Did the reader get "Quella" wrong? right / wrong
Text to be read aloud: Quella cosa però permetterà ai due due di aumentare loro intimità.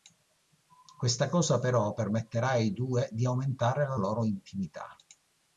wrong